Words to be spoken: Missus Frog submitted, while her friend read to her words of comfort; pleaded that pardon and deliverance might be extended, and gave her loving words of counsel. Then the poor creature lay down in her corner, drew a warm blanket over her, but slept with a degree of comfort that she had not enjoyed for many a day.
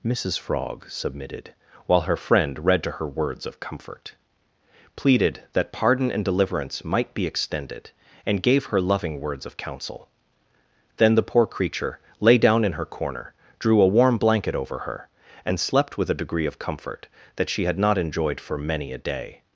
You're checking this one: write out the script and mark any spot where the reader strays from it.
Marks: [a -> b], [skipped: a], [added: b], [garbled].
Missus Frog submitted, while her friend read to her words of comfort; pleaded that pardon and deliverance might be extended, and gave her loving words of counsel. Then the poor creature lay down in her corner, drew a warm blanket over her, [but -> and] slept with a degree of comfort that she had not enjoyed for many a day.